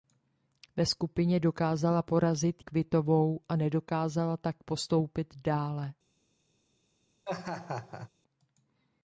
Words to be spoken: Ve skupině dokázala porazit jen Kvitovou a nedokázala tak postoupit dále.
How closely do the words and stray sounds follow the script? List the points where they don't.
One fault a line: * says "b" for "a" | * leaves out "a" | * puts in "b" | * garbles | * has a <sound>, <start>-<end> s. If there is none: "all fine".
* leaves out "jen"
* has a laugh, 7.2-8.1 s